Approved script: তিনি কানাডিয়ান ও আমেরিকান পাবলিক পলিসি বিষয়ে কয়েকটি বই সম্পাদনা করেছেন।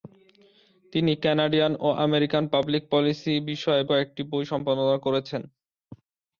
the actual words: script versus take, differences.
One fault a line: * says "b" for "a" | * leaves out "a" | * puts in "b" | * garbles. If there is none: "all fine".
all fine